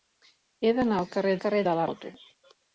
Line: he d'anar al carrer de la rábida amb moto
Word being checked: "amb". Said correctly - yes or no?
no